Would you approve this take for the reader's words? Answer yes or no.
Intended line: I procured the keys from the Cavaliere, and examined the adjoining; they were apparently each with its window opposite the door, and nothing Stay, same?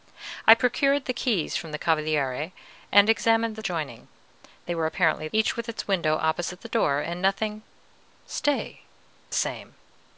yes